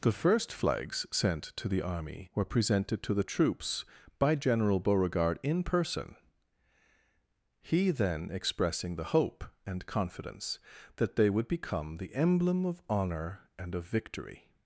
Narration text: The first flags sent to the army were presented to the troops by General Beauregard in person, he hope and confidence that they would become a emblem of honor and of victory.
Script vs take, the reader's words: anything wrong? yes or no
yes